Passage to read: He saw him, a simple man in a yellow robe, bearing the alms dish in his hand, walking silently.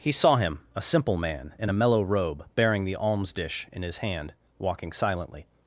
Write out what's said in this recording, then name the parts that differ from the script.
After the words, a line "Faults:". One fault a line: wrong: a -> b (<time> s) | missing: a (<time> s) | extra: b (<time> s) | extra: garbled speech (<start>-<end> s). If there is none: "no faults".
He saw him, a simple man in a mellow robe, bearing the alms dish in his hand, walking silently.
Faults:
wrong: yellow -> mellow (1.7 s)